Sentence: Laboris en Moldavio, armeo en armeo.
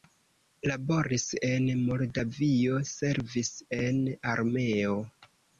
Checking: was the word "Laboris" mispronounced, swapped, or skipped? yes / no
no